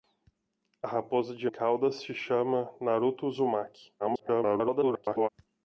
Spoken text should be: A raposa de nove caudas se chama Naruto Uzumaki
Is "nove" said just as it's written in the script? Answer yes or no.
no